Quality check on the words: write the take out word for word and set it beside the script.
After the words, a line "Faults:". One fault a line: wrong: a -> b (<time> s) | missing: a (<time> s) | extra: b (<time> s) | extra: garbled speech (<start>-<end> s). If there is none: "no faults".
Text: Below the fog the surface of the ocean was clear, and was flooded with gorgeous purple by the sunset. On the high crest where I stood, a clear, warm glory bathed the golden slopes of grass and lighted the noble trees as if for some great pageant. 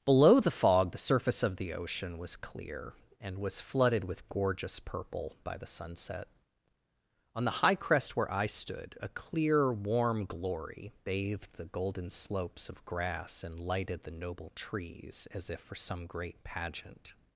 Below the fog the surface of the ocean was clear, and was flooded with gorgeous purple by the sunset. On the high crest where I stood, a clear, warm glory bathed the golden slopes of grass and lighted the noble trees as if for some great pageant.
Faults:
no faults